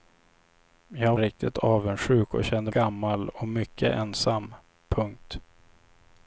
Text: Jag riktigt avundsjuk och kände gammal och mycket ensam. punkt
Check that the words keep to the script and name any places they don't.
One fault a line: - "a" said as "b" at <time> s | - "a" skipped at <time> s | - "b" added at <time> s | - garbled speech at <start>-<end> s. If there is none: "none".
none